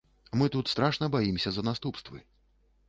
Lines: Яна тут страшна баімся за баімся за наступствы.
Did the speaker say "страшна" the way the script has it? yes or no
yes